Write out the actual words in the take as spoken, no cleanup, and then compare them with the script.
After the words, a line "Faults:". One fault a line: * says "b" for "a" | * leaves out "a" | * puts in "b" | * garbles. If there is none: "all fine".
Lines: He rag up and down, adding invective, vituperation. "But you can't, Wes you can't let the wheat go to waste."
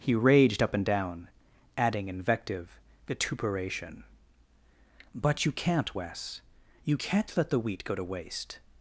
He raged up and down, adding invective, vituperation. "But you can't, Wes you can't let the wheat go to waste."
Faults:
* says "raged" for "rag"